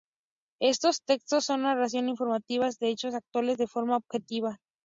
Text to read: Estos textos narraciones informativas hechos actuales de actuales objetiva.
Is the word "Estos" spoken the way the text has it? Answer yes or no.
yes